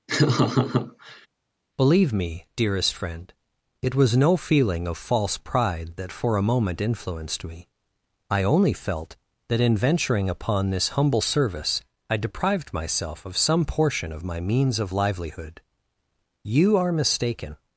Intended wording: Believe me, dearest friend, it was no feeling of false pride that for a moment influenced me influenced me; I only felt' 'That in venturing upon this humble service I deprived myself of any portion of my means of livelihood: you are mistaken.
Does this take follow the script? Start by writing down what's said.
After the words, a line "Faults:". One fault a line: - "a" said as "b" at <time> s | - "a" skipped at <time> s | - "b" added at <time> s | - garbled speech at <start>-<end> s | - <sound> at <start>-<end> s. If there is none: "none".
Believe me, dearest friend, it was no feeling of false pride that for a moment influenced me; I only felt' 'That in venturing upon this humble service I deprived myself of some portion of my means of livelihood: you are mistaken.
Faults:
- laugh at 0.1-1.3 s
- "influenced me" skipped at 7.7 s
- "any" said as "some" at 13.4 s